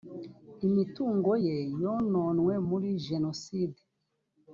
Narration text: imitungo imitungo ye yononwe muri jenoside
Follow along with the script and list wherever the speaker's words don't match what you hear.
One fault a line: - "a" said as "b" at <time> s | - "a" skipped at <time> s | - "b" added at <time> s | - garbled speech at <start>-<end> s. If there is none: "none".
- "imitungo" skipped at 1.3 s